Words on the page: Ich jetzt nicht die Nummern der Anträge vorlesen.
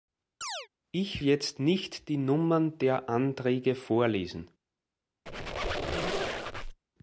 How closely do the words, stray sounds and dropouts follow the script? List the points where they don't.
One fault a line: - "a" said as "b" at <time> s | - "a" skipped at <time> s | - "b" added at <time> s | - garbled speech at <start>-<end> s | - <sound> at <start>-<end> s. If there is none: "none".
- chirp at 0.4-0.7 s
- squeak at 5.3-6.8 s